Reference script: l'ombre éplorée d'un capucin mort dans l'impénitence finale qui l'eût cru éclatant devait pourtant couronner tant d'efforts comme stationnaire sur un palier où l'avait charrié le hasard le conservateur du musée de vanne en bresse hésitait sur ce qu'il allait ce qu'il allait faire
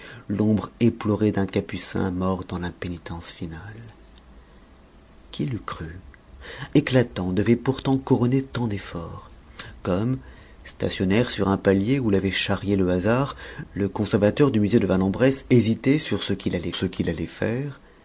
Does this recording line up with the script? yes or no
yes